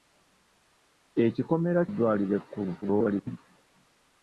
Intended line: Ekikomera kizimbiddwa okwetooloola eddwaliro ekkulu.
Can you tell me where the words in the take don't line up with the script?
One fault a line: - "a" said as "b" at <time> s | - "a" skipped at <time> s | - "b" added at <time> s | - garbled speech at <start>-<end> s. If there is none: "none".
- "kizimbiddwa okwetooloola" skipped at 1.8 s
- garbled speech at 2.8-3.4 s